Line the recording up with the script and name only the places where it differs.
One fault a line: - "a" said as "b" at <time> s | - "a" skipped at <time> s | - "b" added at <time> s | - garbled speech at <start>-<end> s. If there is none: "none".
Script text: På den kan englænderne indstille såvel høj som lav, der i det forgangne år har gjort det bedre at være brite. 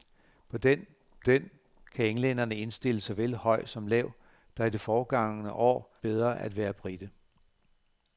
- "den" added at 1.2 s
- "har gjort det" skipped at 6.0 s